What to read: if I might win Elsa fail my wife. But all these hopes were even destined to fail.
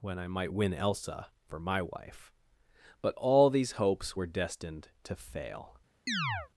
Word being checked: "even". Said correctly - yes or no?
no